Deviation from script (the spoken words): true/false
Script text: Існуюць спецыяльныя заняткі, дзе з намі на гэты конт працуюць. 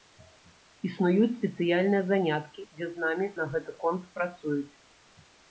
false